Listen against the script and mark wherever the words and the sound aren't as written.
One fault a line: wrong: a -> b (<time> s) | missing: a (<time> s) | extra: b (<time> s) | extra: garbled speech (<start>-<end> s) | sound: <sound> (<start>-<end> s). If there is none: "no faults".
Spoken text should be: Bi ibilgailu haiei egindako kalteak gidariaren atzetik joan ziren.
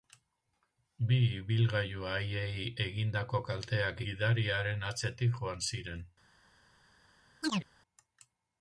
sound: chirp (7.4-7.7 s)